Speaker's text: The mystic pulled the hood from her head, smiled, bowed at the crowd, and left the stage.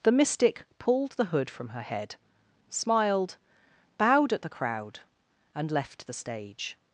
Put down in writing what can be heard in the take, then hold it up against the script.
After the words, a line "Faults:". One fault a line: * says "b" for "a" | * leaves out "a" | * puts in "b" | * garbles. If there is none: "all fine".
The mystic pulled the hood from her head, smiled, bowed at the crowd, and left the stage.
Faults:
all fine